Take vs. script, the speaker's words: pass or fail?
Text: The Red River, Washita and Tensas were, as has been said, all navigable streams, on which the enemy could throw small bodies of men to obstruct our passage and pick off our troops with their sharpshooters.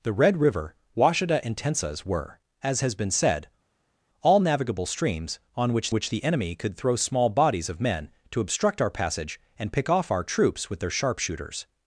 fail